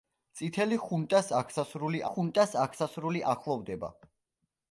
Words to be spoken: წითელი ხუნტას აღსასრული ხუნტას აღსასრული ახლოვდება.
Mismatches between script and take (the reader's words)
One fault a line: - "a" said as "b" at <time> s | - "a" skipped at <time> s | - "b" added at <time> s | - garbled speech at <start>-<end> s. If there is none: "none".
none